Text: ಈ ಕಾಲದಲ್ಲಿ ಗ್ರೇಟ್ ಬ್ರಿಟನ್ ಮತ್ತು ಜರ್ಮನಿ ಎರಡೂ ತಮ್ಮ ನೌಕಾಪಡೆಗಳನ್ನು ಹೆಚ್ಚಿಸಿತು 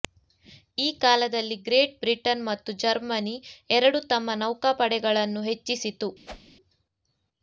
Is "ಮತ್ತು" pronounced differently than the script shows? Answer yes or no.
no